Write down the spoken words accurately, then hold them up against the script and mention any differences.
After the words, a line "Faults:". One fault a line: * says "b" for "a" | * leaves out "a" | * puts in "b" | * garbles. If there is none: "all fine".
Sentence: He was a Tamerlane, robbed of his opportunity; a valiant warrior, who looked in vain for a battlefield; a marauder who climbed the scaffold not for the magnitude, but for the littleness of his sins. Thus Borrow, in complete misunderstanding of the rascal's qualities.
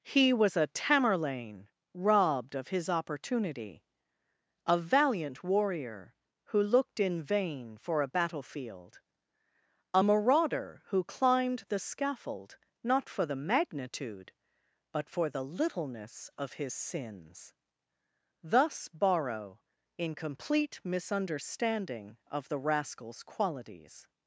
He was a Tamerlane, robbed of his opportunity; a valiant warrior, who looked in vain for a battlefield; a marauder who climbed the scaffold not for the magnitude, but for the littleness of his sins. Thus Borrow, in complete misunderstanding of the rascal's qualities.
Faults:
all fine